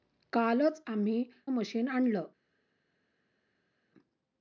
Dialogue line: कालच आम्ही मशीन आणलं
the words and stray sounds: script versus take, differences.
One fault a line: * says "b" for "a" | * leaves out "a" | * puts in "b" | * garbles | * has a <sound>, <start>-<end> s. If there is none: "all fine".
all fine